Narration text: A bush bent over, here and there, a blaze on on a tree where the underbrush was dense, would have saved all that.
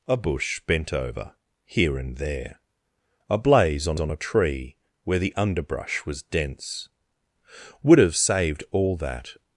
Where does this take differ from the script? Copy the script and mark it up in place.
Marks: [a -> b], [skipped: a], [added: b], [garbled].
A bush bent over, here and there, a blaze on on a tree where the underbrush was dense, would have saved all that.